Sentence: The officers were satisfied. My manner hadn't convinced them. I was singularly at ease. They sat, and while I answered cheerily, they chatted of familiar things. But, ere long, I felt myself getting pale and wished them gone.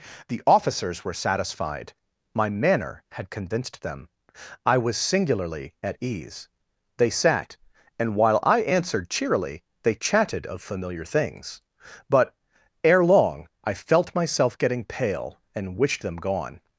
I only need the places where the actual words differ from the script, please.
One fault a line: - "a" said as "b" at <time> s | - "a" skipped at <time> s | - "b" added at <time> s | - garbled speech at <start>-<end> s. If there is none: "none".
- "hadn't" said as "had" at 3.1 s